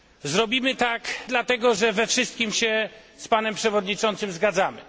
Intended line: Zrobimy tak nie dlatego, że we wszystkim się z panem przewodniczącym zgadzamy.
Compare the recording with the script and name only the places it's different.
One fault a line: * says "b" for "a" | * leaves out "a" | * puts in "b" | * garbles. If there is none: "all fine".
* leaves out "nie"